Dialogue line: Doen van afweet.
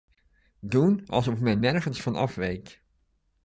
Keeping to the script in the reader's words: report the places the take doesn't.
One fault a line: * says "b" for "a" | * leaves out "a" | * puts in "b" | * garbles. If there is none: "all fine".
* puts in "alsof men nergens"